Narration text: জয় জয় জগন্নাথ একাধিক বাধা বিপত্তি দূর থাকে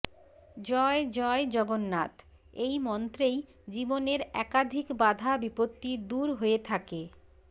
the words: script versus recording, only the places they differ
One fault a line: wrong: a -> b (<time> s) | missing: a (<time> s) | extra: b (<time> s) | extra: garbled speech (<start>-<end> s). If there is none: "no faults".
extra: এই মন্ত্রেই জীবনের (2.6 s)
extra: হয়ে (6.3 s)